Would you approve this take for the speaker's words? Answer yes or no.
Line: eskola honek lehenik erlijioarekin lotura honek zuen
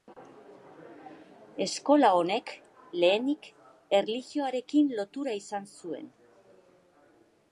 no